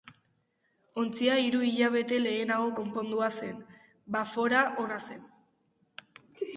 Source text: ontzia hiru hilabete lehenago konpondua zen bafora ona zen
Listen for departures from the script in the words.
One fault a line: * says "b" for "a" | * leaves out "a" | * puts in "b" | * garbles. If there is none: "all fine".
all fine